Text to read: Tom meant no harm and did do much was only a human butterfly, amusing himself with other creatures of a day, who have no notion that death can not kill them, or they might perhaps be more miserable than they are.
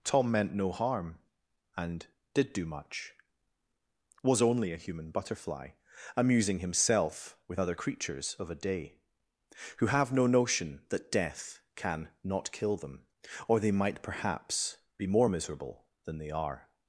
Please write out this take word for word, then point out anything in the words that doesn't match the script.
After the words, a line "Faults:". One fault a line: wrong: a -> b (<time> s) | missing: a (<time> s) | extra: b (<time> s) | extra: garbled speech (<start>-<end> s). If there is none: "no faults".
Tom meant no harm and did do much was only a human butterfly, amusing himself with other creatures of a day, who have no notion that death can not kill them, or they might perhaps be more miserable than they are.
Faults:
no faults